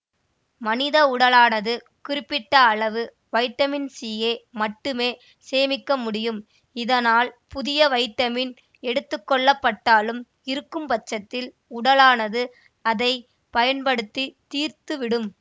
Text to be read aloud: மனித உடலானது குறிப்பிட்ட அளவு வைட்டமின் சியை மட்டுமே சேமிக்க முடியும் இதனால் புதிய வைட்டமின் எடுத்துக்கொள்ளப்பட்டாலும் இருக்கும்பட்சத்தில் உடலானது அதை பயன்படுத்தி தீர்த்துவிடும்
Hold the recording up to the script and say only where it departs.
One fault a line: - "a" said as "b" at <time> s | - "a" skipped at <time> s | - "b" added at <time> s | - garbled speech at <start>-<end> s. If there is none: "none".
none